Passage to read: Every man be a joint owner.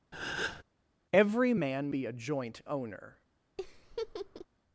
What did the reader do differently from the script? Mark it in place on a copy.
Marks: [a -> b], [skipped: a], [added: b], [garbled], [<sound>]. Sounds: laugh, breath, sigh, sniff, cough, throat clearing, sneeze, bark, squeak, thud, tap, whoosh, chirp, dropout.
[breath] Every man be a joint owner. [laugh]